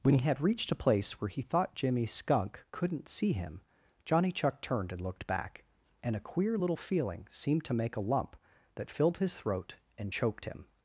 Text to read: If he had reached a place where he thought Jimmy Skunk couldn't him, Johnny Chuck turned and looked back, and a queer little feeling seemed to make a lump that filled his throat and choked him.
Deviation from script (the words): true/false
true